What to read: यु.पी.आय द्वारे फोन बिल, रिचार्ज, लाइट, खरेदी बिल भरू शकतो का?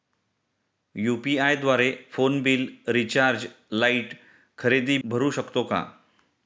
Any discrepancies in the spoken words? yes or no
yes